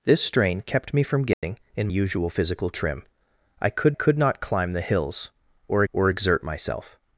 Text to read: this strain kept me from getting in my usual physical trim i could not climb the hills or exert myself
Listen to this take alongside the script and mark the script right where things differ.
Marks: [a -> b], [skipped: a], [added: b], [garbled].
this strain kept me from getting in [skipped: my] usual physical trim i could [added: could] not climb the hills or [added: or] exert myself